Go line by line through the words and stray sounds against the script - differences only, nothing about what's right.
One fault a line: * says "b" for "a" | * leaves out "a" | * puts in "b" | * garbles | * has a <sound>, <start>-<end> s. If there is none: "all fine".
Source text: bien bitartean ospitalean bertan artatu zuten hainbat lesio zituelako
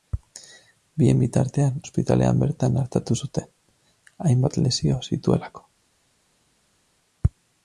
all fine